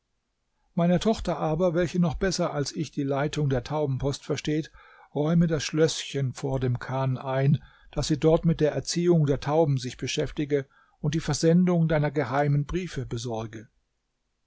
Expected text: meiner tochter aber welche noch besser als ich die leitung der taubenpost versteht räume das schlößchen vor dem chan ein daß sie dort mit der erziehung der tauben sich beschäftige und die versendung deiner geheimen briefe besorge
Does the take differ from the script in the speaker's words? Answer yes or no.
no